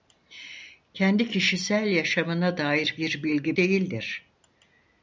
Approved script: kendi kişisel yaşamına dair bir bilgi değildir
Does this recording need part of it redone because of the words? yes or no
no